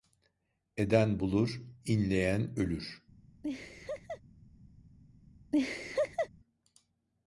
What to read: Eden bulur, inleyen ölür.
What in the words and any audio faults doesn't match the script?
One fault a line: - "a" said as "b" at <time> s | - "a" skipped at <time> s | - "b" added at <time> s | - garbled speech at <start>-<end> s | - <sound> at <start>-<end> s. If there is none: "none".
- laugh at 3.4-4.2 s
- laugh at 5.5-6.3 s